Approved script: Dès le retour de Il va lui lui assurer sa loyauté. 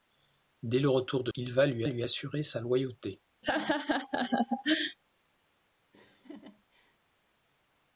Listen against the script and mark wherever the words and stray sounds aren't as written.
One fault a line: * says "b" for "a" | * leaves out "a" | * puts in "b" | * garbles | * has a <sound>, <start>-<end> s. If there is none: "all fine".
* has a laugh, 3.4-5.0 s
* has a laugh, 5.9-7.0 s